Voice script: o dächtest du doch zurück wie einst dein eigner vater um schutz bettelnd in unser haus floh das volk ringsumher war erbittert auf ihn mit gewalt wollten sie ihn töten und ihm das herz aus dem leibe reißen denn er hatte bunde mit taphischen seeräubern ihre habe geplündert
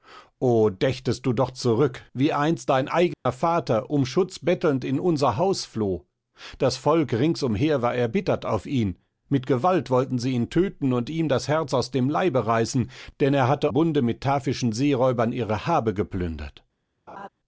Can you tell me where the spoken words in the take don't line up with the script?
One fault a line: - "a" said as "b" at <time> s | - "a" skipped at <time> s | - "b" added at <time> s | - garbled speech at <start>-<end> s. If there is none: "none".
none